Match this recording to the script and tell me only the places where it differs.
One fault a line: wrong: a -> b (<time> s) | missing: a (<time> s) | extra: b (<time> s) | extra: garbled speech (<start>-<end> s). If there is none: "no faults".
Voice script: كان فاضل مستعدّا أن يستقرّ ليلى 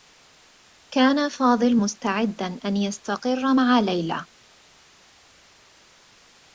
extra: مع (3.6 s)